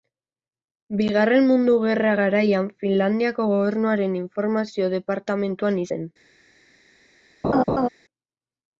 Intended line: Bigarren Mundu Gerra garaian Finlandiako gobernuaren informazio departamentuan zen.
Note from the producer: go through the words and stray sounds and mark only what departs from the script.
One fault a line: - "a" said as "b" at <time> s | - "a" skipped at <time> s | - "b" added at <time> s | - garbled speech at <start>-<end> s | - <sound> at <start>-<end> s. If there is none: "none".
- laugh at 7.4-7.9 s